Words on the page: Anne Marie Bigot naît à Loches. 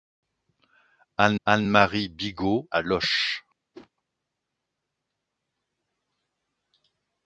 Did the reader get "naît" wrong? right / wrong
wrong